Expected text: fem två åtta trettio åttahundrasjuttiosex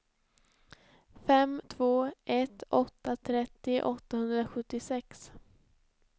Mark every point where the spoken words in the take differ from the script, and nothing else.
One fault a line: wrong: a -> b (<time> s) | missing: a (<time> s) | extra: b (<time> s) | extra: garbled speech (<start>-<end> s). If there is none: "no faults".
extra: ett (2.2 s)